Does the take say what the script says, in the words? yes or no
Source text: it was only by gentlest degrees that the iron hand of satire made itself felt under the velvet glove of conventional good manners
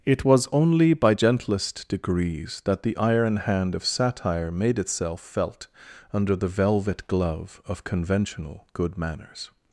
yes